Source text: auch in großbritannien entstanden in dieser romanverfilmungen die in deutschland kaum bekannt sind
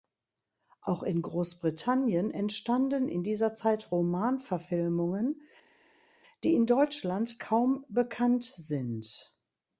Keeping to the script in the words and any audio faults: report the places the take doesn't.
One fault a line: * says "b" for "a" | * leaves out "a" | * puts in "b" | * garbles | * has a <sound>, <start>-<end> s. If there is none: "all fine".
* puts in "zeit"